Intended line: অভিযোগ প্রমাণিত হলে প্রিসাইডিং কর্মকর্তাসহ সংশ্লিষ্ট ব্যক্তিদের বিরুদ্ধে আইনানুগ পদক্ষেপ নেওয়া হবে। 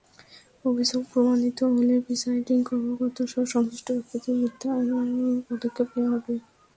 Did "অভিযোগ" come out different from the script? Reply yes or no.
no